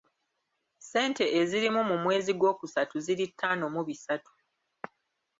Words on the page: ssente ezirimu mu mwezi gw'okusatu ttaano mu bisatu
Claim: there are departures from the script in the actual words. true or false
true